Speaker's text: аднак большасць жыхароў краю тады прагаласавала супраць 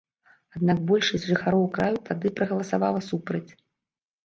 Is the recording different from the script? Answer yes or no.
no